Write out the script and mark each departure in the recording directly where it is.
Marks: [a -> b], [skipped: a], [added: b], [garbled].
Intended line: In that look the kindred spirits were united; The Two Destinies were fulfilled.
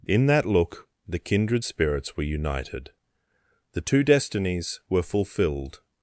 In that look the kindred spirits were united; The Two Destinies were fulfilled.